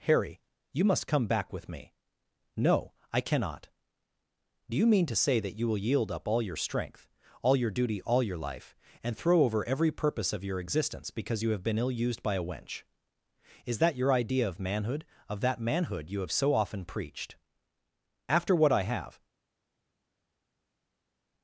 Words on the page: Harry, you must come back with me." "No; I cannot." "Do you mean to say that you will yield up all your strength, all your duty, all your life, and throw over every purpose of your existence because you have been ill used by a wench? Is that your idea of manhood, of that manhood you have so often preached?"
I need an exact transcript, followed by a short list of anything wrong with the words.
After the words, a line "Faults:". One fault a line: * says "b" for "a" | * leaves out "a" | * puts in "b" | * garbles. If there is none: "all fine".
Harry, you must come back with me." "No; I cannot." "Do you mean to say that you will yield up all your strength, all your duty, all your life, and throw over every purpose of your existence because you have been ill used by a wench? Is that your idea of manhood, of that manhood you have so often preached?" "After what I have
Faults:
* puts in "After what I have"